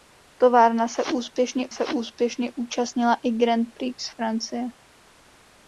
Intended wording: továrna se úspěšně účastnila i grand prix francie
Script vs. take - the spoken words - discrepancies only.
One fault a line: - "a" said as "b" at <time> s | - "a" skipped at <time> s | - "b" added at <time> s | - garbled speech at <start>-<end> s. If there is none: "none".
- "se úspěšně" added at 1.7 s